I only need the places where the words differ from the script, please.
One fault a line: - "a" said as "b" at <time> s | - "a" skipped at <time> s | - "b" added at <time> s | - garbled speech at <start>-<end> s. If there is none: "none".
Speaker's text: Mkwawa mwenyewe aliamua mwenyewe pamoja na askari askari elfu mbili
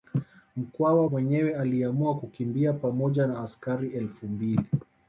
- "mwenyewe" said as "kukimbia" at 2.2 s
- "askari" skipped at 3.9 s